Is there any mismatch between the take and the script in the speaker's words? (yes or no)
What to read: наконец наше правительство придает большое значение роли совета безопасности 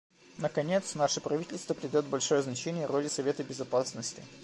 no